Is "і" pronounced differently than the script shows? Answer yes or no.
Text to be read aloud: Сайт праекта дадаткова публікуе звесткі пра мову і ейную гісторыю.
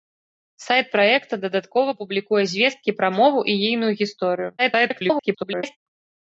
no